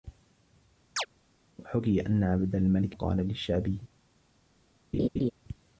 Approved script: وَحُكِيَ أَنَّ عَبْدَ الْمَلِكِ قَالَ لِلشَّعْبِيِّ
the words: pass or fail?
pass